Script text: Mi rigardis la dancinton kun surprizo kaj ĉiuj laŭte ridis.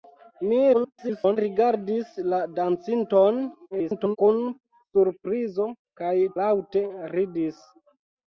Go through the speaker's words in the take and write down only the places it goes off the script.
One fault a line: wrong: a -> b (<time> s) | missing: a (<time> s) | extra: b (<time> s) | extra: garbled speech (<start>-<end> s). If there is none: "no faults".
extra: garbled speech (0.7-1.4 s)
extra: garbled speech (3.7-4.2 s)
missing: ĉiuj (6.1 s)